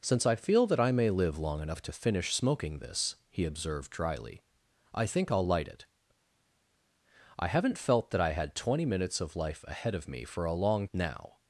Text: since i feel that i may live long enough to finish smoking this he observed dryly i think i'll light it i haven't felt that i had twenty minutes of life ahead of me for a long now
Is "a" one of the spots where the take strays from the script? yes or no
no